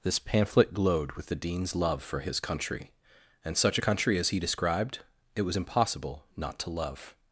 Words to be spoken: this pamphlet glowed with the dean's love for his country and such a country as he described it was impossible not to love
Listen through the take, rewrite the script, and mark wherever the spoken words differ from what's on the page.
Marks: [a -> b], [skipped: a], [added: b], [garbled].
this pamphlet glowed with the dean's love for his country and such a country as he described it was impossible not to love